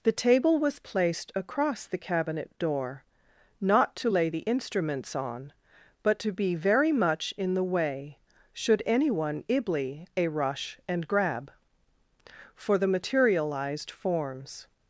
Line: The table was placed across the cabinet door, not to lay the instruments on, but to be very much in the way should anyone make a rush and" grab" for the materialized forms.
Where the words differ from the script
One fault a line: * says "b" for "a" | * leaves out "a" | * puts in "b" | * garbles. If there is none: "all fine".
* says "ibly" for "make"